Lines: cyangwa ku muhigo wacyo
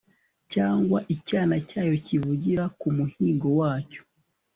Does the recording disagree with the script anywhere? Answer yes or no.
yes